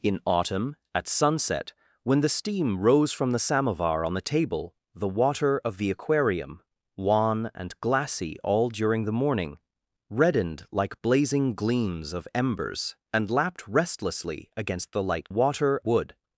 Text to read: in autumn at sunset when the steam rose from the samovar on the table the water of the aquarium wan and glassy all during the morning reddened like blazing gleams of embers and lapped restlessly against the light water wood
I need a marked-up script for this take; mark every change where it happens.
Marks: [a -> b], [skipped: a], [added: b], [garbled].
in autumn at sunset when the steam rose from the samovar on the table the water of the aquarium wan and glassy all during the morning reddened like blazing gleams of embers and lapped restlessly against the light water wood